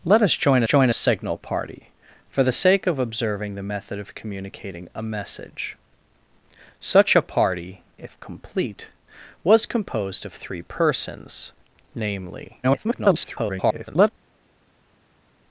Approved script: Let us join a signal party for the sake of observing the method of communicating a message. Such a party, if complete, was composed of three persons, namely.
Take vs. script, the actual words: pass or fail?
fail